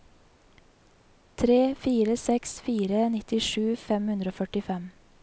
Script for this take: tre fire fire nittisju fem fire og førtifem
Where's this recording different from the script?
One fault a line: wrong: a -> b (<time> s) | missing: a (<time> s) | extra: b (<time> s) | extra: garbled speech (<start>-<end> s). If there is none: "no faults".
extra: seks (2.2 s)
wrong: fire -> hundre (4.1 s)